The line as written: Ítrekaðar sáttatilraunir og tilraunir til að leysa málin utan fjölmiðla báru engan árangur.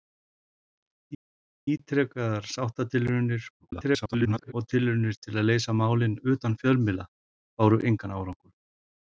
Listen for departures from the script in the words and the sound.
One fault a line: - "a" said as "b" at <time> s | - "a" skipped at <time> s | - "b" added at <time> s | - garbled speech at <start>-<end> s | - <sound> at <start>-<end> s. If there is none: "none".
- garbled speech at 3.6-4.5 s